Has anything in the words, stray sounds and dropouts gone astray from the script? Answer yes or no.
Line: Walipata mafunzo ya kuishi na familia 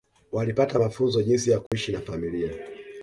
yes